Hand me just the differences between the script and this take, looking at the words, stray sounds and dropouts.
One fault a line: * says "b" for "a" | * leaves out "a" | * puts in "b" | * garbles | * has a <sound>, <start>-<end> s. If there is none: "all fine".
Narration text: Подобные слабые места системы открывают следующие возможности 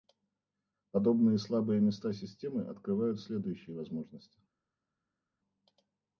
all fine